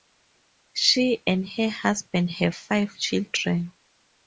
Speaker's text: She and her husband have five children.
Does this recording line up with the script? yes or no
yes